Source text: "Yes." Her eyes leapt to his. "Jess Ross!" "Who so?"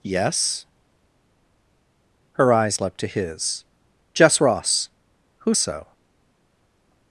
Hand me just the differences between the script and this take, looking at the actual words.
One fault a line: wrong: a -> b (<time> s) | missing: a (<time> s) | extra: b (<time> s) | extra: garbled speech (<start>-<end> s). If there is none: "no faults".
no faults